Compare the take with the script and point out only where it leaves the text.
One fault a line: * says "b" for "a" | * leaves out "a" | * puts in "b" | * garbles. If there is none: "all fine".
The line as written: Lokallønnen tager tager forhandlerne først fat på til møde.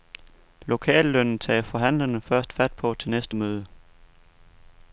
* leaves out "tager"
* puts in "næste"